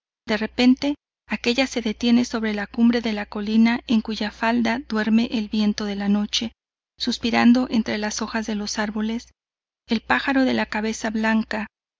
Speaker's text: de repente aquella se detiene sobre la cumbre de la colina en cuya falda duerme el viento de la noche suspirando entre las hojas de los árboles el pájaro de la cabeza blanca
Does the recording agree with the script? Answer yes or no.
yes